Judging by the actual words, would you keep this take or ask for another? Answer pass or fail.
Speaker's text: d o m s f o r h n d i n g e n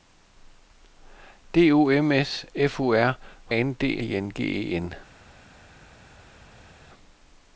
pass